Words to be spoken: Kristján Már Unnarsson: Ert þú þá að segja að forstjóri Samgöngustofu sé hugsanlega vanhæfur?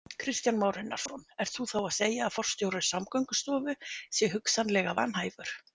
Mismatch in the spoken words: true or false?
false